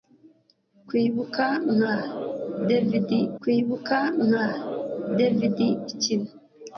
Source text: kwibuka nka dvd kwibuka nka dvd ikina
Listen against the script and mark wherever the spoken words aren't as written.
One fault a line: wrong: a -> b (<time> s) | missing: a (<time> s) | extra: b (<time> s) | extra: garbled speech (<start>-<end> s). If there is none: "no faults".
no faults